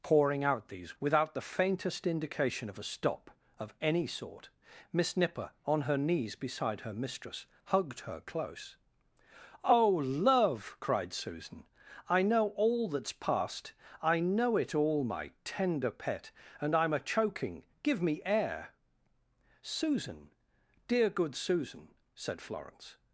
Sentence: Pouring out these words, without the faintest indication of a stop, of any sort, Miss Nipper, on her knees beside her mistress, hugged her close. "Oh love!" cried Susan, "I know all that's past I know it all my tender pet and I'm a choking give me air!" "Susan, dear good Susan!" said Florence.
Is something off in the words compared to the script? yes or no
yes